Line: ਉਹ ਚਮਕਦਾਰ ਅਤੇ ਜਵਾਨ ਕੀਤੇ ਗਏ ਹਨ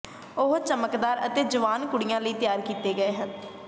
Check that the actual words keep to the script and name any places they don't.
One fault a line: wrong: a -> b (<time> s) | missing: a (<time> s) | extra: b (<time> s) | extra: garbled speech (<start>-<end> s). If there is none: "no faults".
extra: ਕੁੜੀਆਂ ਲਈ ਤਿਆਰ (1.9 s)